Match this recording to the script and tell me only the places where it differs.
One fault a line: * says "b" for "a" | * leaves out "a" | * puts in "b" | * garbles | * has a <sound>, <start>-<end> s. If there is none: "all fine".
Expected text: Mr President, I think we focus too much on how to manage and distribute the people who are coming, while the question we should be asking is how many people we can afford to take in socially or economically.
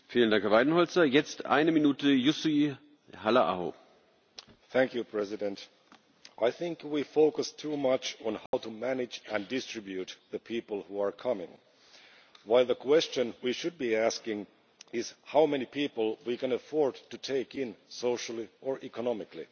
* has a dropout, 8.5-8.5 s